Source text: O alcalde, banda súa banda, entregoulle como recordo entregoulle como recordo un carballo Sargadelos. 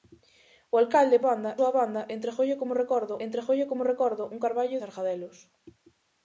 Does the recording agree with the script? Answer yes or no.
yes